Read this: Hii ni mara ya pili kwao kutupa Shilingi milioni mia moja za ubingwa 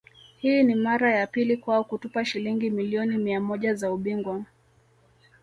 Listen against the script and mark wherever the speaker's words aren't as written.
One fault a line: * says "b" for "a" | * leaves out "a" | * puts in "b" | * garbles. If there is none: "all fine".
all fine